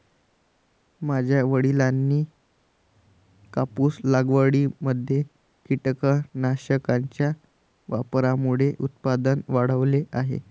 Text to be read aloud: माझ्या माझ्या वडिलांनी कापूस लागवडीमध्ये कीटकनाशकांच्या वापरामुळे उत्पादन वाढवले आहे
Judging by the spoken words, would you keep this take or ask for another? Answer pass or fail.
fail